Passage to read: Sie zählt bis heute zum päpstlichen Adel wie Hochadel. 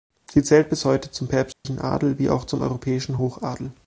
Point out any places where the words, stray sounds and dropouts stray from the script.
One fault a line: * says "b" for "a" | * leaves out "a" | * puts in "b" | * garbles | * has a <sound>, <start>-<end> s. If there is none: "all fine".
* has a dropout, 1.5-1.7 s
* puts in "auch zum europäischen"